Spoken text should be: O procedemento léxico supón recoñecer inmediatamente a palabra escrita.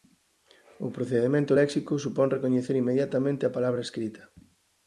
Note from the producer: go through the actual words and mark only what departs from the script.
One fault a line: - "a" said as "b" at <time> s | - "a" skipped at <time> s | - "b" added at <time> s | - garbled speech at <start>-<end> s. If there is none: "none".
none